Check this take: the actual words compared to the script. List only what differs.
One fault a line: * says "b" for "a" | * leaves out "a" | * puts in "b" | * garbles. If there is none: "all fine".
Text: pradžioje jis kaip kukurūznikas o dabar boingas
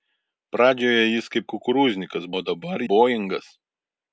all fine